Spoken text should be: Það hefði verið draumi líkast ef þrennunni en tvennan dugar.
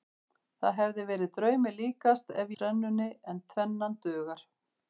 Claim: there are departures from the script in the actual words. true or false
false